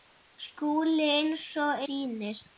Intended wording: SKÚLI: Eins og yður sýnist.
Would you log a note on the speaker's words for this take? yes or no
yes